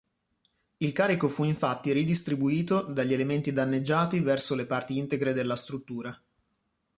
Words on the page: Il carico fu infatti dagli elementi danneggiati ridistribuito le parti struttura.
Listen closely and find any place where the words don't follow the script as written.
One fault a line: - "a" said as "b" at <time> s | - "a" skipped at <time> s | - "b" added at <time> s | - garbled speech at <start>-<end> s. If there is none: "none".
- "ridistribuito" added at 1.9 s
- "ridistribuito" said as "verso" at 4.2 s
- "integre della" added at 5.0 s